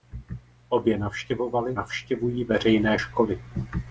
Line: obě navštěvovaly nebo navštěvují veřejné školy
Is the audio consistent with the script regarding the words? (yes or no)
no